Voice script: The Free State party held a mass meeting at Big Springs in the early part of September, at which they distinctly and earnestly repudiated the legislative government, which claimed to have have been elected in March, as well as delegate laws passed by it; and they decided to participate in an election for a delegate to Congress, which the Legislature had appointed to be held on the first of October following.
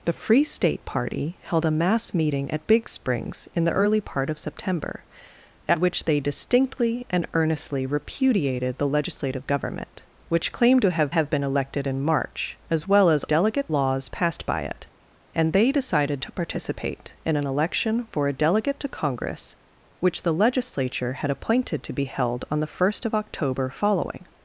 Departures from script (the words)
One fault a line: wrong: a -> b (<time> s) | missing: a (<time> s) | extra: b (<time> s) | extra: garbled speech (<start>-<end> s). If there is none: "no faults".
no faults